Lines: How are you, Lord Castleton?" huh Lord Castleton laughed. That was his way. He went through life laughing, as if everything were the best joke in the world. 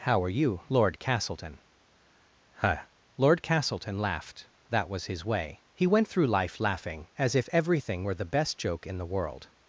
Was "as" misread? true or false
false